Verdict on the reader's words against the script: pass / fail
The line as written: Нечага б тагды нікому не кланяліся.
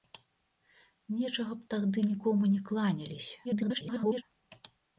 fail